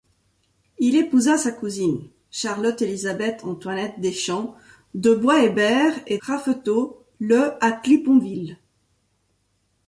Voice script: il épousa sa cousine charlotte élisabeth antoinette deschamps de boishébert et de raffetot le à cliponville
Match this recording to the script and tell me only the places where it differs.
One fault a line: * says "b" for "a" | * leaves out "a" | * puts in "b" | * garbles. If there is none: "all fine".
* leaves out "de"